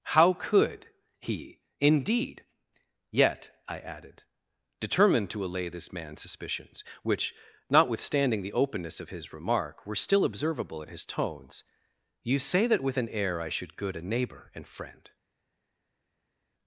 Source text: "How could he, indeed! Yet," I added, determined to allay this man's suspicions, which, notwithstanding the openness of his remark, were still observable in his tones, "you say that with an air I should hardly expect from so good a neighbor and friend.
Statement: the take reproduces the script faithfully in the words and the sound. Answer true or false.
false